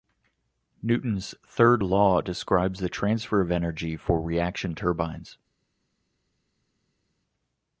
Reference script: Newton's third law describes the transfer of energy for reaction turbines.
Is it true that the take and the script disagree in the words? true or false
false